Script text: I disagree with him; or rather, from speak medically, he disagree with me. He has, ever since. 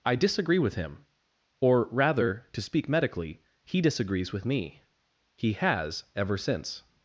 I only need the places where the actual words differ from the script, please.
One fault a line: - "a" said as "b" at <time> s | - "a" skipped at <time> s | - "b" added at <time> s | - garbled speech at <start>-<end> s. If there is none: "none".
- "from" said as "to" at 2.5 s
- "disagree" said as "disagrees" at 3.8 s